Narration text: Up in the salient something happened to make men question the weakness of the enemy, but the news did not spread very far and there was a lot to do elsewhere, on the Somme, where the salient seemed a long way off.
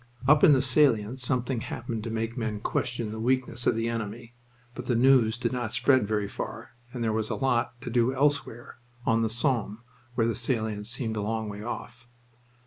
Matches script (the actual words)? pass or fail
pass